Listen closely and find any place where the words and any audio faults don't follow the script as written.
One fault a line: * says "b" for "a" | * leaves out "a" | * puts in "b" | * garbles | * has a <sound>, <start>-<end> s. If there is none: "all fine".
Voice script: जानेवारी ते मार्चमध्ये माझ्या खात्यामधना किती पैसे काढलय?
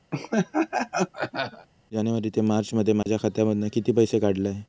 * has a laugh, 0.1-1.7 s
* has a dropout, 3.0-3.1 s